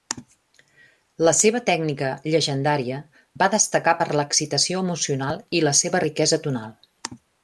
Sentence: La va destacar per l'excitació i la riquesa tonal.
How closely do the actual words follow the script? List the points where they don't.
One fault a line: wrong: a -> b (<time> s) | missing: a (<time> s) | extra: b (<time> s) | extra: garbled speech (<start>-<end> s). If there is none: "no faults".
extra: seva tècnica llegendària (1.4 s)
extra: emocional (4.9 s)
extra: seva (5.8 s)